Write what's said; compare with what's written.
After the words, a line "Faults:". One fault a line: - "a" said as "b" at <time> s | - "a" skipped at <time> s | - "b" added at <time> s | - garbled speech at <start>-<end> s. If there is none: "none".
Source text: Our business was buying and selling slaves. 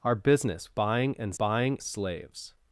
Our business buying and buying slaves.
Faults:
- "was" skipped at 0.7 s
- "selling" said as "buying" at 1.3 s